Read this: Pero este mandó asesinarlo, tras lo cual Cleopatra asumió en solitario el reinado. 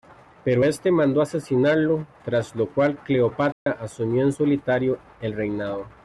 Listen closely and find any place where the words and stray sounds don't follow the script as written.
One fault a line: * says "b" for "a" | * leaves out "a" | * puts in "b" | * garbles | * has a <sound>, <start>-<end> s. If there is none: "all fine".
* has a dropout, 3.5-3.7 s